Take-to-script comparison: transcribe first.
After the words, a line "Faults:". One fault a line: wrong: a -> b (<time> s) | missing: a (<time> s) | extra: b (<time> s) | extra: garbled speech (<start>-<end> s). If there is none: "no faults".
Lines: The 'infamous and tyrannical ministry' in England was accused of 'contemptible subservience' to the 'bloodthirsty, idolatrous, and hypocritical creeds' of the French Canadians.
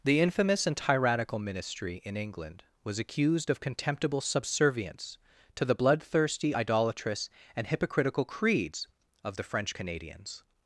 The 'infamous and tyrannical ministry' in England was accused of 'contemptible subservience' to the 'bloodthirsty, idolatrous, and hypocritical creeds' of the French Canadians.
Faults:
no faults